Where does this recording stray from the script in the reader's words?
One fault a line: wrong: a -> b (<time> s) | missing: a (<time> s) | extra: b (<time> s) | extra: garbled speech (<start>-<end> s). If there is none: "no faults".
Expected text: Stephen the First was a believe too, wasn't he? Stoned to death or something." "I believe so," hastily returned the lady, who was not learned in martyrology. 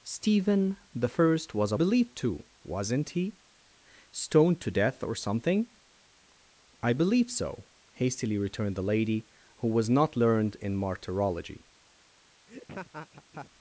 no faults